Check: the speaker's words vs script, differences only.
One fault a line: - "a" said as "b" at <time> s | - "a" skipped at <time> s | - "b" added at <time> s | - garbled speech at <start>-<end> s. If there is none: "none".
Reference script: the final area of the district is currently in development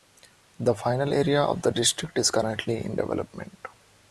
none